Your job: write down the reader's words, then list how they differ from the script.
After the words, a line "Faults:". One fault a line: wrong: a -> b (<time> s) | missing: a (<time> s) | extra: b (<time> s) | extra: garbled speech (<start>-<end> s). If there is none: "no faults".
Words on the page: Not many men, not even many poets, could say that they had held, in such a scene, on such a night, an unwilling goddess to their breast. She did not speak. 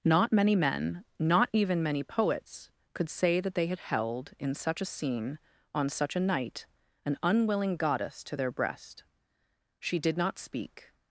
Not many men, not even many poets, could say that they had held, in such a scene, on such a night, an unwilling goddess to their breast. She did not speak.
Faults:
no faults